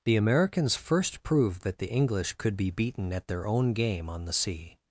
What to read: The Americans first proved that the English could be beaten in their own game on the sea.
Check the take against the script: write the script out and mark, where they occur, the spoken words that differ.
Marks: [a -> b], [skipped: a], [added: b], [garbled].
The Americans first proved that the English could be beaten [in -> at] their own game on the sea.